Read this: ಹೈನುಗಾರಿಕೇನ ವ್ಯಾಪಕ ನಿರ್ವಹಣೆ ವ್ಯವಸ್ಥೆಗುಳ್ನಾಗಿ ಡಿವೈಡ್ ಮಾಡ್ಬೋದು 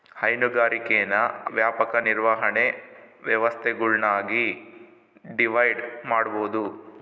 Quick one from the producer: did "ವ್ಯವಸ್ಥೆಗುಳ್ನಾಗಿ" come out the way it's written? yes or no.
yes